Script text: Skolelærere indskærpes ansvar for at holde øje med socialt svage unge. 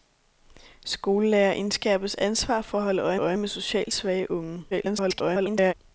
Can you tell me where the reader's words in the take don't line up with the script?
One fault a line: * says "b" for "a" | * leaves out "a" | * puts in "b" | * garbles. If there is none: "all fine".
* puts in "øje"
* garbles